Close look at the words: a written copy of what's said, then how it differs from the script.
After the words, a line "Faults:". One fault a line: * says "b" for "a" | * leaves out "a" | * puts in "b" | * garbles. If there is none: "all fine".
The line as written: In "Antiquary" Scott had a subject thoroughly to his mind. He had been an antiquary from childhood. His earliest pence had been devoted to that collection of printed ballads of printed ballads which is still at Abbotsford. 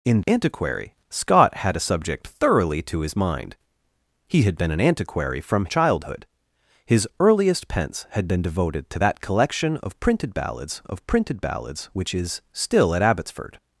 In "Antiquary" Scott had a subject thoroughly to his mind. He had been an antiquary from childhood. His earliest pence had been devoted to that collection of printed ballads of printed ballads which is still at Abbotsford.
Faults:
all fine